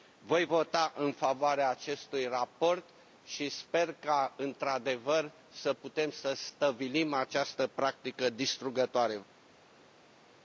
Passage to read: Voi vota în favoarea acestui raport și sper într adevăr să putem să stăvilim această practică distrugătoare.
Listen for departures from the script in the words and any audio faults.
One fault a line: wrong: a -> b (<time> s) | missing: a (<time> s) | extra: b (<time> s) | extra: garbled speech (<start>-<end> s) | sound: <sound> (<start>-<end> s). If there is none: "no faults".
extra: ca (3.9 s)